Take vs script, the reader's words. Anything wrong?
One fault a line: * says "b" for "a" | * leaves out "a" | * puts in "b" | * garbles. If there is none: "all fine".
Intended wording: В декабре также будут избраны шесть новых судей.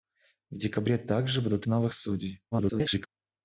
* leaves out "избраны шесть"
* garbles